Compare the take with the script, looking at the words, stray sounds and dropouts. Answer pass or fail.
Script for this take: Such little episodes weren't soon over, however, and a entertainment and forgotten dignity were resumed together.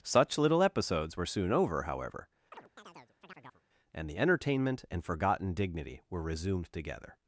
fail